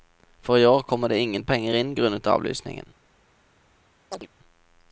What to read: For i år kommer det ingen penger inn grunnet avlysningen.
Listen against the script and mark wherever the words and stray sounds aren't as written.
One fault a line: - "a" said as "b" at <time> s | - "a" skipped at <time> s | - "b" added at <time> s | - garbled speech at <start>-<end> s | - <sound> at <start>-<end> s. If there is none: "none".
- chirp at 4.1-4.3 s